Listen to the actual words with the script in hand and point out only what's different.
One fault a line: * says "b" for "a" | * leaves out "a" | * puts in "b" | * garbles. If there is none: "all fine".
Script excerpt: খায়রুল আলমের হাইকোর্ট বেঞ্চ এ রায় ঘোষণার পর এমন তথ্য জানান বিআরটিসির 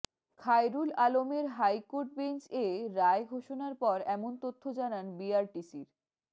all fine